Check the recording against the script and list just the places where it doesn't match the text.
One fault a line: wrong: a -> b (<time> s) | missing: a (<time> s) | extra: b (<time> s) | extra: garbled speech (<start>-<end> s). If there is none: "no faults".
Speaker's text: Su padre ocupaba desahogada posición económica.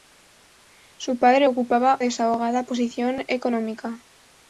no faults